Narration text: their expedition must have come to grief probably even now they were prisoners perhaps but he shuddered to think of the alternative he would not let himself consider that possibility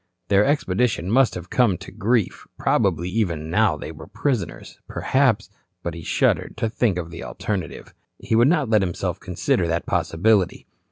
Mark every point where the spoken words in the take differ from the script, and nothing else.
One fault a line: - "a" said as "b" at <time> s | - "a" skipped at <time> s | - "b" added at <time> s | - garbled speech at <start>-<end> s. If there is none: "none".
none